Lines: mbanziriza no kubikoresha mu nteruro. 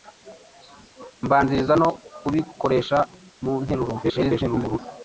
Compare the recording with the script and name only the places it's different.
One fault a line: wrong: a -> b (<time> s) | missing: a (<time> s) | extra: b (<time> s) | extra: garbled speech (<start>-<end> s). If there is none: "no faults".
extra: garbled speech (4.0-4.8 s)